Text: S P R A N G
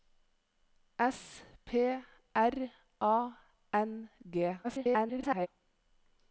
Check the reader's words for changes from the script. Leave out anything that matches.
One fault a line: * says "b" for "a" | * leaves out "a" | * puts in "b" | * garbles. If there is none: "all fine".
* garbles